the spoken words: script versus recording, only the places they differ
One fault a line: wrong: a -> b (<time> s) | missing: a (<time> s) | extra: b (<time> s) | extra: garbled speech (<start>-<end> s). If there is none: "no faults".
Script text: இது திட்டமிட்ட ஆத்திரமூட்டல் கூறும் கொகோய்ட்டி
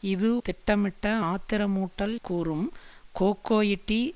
no faults